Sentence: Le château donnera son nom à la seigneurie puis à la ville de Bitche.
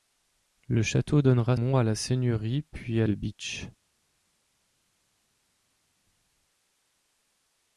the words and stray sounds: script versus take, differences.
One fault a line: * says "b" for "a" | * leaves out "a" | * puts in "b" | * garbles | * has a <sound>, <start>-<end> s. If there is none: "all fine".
* leaves out "son"
* leaves out "la ville"